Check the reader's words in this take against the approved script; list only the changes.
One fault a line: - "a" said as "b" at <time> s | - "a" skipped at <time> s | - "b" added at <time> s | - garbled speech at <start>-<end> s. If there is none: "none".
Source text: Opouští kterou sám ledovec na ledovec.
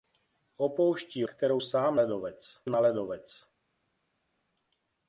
none